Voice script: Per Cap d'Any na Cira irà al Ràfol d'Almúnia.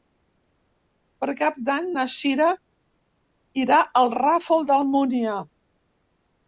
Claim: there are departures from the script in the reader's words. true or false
false